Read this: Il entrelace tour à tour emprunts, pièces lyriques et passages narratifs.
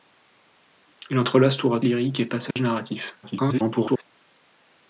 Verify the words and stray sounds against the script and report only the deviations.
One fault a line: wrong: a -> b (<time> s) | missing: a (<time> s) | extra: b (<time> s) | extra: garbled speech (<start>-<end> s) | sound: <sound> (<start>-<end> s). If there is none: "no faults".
missing: tour emprunts pièces (1.8 s)
sound: dropout (2.5-2.6 s)
extra: garbled speech (3.2-4.0 s)